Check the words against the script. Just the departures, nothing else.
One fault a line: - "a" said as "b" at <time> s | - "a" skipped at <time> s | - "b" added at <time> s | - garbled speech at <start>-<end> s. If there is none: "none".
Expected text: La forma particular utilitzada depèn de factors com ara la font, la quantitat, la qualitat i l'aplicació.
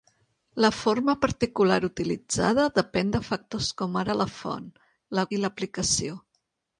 - "quantitat la qualitat" skipped at 5.3 s